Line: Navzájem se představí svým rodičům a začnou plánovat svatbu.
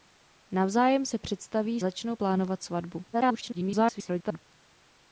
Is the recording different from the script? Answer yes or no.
yes